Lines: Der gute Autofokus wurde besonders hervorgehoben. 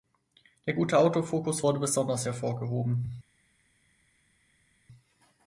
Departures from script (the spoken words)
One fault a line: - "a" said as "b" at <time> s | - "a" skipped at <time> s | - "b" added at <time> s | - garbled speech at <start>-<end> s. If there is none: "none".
none